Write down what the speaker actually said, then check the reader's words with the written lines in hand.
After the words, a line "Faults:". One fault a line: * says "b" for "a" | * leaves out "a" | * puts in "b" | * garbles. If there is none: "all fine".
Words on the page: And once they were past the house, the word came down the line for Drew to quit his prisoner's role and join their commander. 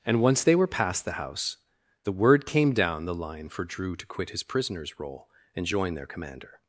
And once they were past the house, the word came down the line for Drew to quit his prisoner's role and join their commander.
Faults:
all fine